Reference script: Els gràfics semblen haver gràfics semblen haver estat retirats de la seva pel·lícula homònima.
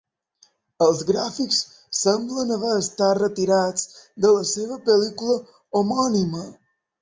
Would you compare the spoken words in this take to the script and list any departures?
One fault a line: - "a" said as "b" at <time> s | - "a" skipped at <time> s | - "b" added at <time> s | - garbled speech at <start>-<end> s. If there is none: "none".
- "gràfics semblen haver" skipped at 2.7 s